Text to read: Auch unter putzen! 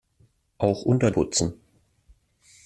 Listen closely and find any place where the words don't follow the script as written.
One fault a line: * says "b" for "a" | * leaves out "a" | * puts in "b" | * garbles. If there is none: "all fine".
all fine